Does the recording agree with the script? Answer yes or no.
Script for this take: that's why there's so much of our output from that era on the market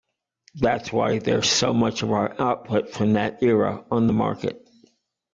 yes